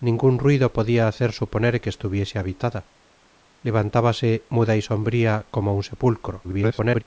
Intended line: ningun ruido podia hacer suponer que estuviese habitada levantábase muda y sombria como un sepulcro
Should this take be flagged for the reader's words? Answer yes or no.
yes